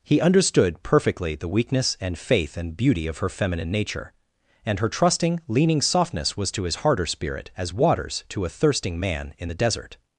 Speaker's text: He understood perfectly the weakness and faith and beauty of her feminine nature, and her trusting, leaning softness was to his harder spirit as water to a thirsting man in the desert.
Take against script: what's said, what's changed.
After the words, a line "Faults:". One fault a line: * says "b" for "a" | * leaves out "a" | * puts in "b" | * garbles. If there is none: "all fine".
He understood perfectly the weakness and faith and beauty of her feminine nature, and her trusting, leaning softness was to his harder spirit as waters to a thirsting man in the desert.
Faults:
* says "waters" for "water"